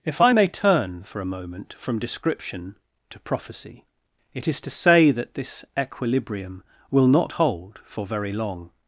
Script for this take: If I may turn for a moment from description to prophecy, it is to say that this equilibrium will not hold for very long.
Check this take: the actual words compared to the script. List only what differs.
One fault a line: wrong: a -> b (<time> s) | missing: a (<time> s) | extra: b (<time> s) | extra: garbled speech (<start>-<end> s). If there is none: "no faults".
no faults